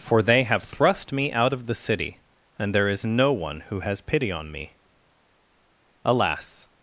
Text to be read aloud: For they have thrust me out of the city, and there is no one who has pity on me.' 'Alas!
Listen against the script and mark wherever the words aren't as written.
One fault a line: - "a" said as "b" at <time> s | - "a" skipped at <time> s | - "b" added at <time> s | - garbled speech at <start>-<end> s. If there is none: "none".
none